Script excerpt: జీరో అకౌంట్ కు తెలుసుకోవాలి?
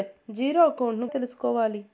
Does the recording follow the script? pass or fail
pass